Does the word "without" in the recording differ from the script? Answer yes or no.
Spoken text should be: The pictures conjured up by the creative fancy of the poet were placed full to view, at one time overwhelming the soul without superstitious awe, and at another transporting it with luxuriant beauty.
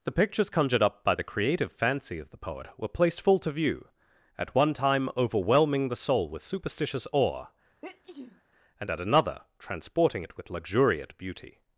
yes